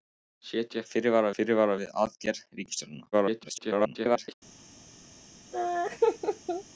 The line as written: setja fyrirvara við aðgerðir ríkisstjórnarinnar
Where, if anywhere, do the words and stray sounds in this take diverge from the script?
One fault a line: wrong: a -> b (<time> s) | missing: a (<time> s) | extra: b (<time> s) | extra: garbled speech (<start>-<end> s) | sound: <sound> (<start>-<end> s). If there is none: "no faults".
extra: fyrirvara (1.4 s)
extra: garbled speech (3.1-4.3 s)
sound: laugh (5.5-6.6 s)